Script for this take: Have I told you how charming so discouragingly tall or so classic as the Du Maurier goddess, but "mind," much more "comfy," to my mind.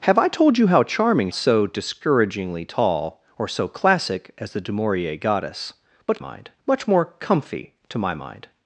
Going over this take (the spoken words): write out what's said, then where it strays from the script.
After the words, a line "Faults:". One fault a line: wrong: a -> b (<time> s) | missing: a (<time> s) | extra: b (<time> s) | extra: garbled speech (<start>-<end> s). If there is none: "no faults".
Have I told you how charming so discouragingly tall or so classic as the Du Maurier goddess, but "mind," much more "comfy," to my mind.
Faults:
no faults